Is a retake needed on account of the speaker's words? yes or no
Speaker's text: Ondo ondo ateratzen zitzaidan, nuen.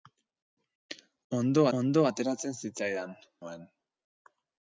no